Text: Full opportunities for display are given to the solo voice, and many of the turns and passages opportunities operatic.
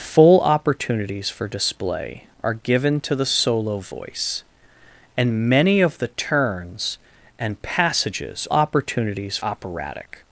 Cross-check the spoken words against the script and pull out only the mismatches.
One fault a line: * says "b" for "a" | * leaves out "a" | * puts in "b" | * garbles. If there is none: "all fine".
all fine